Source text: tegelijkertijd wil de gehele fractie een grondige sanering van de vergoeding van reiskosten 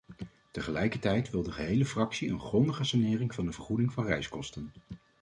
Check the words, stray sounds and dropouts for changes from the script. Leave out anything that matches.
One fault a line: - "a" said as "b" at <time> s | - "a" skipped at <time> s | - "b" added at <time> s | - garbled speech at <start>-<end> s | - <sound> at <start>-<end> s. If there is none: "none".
none